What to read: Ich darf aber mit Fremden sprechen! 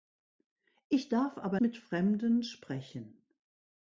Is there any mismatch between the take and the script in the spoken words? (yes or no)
no